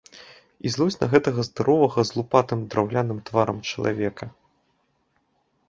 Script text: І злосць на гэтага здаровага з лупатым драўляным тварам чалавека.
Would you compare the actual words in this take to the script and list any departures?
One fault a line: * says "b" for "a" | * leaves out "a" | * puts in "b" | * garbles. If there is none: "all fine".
all fine